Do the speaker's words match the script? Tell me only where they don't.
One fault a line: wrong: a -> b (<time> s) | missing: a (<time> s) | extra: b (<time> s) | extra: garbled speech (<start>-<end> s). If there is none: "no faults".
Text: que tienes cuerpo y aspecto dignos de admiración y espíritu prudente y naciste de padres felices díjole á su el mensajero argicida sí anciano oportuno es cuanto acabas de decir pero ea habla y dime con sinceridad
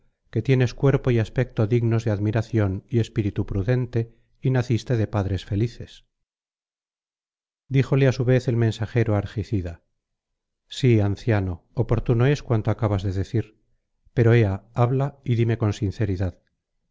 extra: vez (8.2 s)